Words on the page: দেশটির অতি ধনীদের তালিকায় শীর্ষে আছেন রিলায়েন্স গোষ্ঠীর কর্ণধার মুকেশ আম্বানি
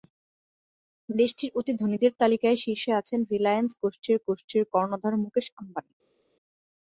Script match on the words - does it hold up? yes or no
no